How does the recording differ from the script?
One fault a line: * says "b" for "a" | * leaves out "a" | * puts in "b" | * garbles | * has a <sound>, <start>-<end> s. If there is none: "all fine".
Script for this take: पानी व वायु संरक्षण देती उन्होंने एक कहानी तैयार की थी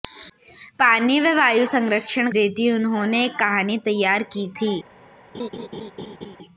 * has a laugh, 5.3-6.4 s